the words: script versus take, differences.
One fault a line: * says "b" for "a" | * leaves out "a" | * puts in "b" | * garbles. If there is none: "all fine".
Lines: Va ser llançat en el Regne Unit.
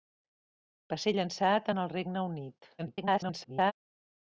* garbles